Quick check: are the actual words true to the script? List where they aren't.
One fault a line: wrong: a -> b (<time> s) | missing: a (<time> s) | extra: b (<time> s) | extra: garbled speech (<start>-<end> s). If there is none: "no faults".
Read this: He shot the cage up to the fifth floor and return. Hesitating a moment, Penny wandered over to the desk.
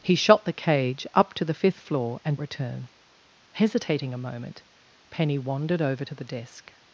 no faults